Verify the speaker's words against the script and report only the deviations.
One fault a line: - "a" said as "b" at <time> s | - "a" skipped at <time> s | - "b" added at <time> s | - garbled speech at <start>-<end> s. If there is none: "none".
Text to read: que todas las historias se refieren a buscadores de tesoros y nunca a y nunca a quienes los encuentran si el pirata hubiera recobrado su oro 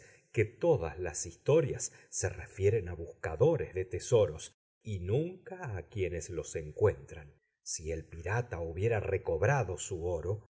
- "y nunca a" skipped at 5.9 s